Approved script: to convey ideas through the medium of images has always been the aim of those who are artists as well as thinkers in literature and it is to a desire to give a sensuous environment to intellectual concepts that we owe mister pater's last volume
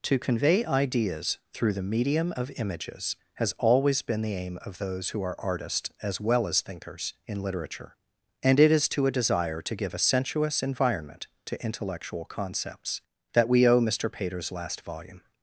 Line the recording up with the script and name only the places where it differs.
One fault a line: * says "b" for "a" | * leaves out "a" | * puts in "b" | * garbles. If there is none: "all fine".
all fine